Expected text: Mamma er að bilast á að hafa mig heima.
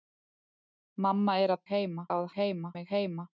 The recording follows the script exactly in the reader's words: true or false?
false